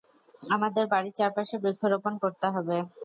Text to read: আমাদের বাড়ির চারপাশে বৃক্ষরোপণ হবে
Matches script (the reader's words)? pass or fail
fail